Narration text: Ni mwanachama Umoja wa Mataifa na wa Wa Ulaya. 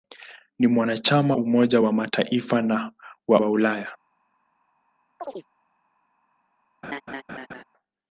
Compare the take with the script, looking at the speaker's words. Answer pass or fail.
pass